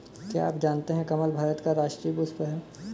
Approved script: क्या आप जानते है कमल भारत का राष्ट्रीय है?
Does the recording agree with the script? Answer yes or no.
no